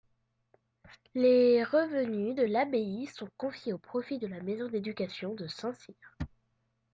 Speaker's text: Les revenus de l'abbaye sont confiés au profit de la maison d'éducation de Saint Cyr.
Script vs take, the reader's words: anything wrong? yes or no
no